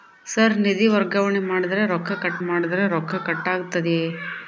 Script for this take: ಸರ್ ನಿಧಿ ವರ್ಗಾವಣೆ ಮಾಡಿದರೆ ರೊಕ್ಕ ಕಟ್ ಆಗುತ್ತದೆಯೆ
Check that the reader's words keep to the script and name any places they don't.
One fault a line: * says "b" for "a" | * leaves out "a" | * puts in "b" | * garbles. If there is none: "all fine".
* puts in "ಮಾಡಿದರೆ ರೊಕ್ಕ ಕಟ್"